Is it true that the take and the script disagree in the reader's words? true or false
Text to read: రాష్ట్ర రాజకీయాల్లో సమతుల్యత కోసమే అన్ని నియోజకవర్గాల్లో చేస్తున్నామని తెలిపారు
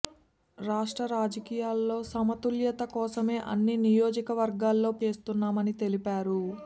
false